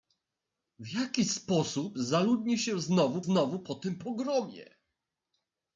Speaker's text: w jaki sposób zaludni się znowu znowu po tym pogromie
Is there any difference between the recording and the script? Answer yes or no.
no